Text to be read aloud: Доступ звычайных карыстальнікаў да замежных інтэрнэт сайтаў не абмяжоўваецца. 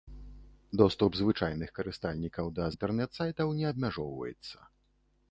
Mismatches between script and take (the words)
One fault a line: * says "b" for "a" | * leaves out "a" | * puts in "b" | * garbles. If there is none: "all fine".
* leaves out "замежных"